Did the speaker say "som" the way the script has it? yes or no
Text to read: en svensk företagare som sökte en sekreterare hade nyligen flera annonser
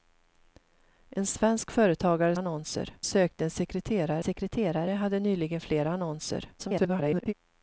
no